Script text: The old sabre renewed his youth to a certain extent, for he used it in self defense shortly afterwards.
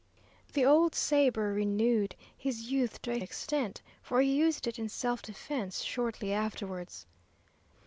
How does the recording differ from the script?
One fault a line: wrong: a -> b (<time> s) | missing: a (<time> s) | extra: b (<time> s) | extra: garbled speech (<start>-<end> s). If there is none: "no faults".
missing: certain (3.2 s)